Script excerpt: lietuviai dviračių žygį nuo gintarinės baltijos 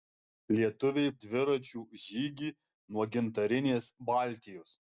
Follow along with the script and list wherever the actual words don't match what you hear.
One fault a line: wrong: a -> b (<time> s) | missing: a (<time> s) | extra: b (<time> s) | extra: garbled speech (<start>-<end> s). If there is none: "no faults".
no faults